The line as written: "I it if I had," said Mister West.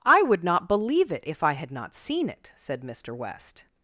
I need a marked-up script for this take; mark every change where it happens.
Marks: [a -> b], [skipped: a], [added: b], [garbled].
"I [added: would not believe] it if I had," [added: not seen it] said Mister West.